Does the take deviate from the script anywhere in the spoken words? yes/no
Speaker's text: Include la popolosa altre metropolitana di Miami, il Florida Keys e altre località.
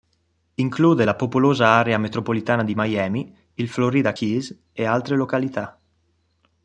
yes